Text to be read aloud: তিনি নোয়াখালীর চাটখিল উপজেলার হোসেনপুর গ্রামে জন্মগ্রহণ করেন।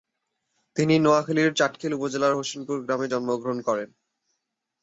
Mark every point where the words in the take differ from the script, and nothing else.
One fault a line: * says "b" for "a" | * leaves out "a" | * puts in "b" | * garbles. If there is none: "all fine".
all fine